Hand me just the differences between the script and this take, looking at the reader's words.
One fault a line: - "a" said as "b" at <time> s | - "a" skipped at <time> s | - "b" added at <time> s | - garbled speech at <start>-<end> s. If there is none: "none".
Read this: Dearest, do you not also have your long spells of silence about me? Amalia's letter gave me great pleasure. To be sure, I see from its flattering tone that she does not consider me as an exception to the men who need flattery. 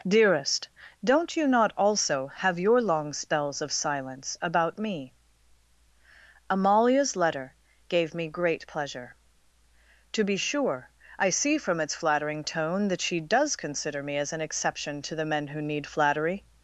- "do" said as "don't" at 1.0 s
- "not" skipped at 13.6 s